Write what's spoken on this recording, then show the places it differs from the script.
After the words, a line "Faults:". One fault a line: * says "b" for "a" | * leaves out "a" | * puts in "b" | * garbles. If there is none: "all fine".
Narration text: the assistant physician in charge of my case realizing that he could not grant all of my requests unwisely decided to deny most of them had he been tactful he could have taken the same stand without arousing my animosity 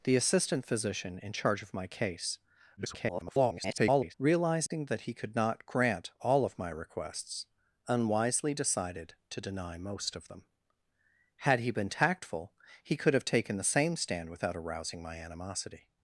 the assistant physician in charge of my case [garbled] realizing that he could not grant all of my requests unwisely decided to deny most of them had he been tactful he could have taken the same stand without arousing my animosity
Faults:
* garbles